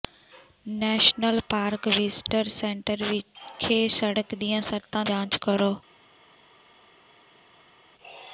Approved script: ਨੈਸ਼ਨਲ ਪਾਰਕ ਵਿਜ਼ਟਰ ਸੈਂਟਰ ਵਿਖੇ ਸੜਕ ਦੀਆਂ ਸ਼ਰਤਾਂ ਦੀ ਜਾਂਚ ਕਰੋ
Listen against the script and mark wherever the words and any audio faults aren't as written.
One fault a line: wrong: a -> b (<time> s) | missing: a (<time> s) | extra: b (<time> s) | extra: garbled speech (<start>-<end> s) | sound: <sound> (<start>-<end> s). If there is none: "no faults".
missing: ਦੀ (5.0 s)